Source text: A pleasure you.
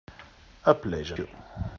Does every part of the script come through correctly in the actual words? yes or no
yes